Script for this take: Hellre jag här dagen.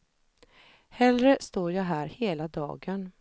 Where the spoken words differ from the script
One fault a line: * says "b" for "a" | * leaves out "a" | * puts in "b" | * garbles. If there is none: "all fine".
* puts in "står"
* puts in "hela"